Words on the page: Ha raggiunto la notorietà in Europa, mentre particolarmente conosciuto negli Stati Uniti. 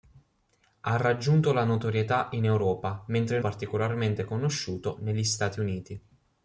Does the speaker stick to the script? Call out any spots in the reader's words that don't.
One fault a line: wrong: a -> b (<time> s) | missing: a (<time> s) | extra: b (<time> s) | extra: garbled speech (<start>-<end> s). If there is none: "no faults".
no faults